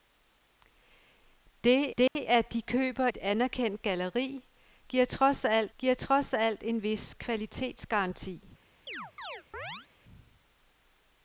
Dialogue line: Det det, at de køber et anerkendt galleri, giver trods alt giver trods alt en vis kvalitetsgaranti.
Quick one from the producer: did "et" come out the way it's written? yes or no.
yes